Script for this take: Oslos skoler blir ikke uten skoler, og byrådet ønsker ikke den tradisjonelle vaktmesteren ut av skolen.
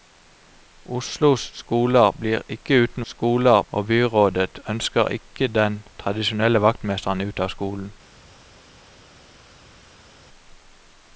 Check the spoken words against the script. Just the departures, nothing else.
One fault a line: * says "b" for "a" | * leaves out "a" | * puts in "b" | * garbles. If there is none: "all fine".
all fine